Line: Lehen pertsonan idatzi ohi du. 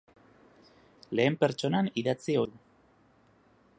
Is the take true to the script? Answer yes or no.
no